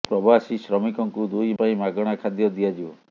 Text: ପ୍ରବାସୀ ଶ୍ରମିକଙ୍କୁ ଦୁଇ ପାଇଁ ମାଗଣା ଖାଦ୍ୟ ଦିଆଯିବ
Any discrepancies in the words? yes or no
no